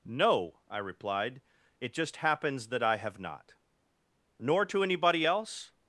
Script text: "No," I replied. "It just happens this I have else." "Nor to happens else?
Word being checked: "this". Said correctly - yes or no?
no